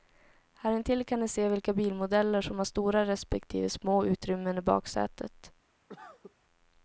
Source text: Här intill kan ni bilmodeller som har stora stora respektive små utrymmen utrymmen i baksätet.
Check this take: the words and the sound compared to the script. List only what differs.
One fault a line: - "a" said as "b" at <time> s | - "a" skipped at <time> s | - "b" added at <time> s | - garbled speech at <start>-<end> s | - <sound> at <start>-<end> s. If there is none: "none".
- "se vilka" added at 1.3 s
- "stora" skipped at 3.1 s
- "utrymmen" skipped at 4.6 s
- cough at 5.9-6.4 s